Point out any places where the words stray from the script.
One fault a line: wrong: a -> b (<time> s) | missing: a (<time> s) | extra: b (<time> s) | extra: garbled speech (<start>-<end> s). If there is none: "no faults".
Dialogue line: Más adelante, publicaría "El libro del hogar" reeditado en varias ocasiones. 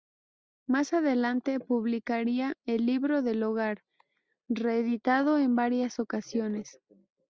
no faults